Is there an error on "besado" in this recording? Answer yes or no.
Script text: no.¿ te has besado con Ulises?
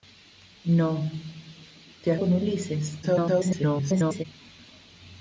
yes